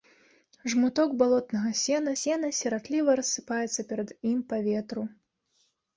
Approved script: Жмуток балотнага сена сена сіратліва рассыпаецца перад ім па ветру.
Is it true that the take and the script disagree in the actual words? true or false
false